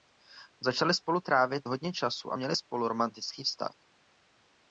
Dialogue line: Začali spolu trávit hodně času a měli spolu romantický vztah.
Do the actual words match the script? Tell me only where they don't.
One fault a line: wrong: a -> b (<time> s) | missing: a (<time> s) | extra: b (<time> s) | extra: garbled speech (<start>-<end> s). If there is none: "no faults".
no faults